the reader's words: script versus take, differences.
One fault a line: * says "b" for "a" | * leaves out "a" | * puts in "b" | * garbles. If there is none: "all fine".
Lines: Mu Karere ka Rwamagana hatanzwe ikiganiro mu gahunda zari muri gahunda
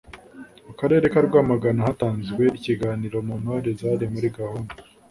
* says "ntore" for "gahunda"